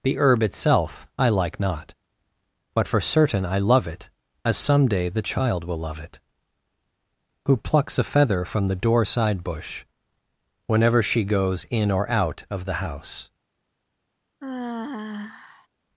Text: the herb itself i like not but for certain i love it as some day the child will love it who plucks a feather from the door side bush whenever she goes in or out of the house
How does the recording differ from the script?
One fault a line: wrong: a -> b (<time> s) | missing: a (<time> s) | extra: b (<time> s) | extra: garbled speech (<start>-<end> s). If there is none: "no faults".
no faults